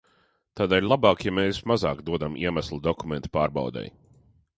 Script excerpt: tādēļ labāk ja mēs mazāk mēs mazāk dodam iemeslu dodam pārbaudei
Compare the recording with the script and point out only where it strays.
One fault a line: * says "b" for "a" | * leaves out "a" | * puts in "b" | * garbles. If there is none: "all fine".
* leaves out "mēs mazāk"
* says "dokumentu" for "dodam"